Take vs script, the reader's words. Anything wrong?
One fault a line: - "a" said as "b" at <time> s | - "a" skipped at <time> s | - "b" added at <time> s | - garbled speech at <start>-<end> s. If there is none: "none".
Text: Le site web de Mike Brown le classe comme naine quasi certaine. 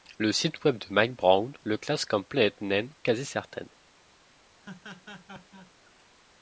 - "planète" added at 2.2 s